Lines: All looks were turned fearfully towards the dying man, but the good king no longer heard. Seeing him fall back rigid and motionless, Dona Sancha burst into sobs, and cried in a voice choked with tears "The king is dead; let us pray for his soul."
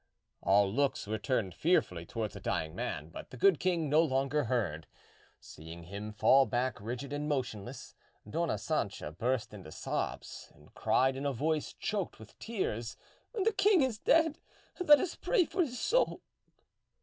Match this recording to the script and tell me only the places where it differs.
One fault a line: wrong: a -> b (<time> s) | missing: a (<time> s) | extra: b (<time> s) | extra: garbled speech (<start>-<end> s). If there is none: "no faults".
no faults